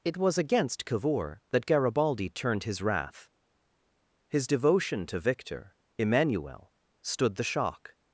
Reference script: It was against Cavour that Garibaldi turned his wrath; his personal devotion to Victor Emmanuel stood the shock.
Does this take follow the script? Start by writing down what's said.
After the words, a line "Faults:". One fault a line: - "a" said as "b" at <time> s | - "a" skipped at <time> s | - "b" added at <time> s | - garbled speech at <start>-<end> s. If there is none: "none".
It was against Cavour that Garibaldi turned his wrath; his devotion to Victor Emmanuel stood the shock.
Faults:
- "personal" skipped at 4.5 s